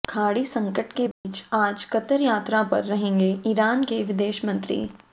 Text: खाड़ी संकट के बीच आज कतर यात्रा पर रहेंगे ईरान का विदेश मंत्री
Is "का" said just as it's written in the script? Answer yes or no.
no